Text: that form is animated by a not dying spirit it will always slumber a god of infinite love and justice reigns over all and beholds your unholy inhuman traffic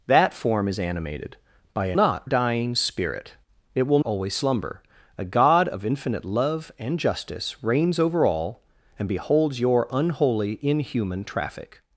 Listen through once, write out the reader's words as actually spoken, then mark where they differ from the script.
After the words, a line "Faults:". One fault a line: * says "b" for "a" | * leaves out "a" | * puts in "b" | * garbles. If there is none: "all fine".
that form is animated by a not dying spirit it will always slumber a god of infinite love and justice reigns over all and beholds your unholy inhuman traffic
Faults:
all fine